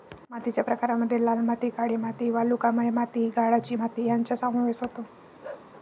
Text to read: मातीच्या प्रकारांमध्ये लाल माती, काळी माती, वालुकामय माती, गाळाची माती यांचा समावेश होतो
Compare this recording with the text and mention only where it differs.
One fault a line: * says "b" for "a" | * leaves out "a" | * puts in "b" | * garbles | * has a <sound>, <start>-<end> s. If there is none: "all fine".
* has a bark, 5.4-5.7 s